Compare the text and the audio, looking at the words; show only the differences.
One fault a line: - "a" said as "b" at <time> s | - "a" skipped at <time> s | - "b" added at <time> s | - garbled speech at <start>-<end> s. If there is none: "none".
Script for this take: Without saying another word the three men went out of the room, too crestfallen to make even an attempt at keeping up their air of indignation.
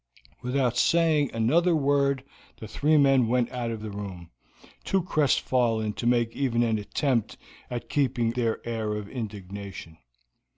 - "up" skipped at 8.3 s